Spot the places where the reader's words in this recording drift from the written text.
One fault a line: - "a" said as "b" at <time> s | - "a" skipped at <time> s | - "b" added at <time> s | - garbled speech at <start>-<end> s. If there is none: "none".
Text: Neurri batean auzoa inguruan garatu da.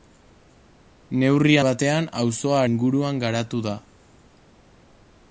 none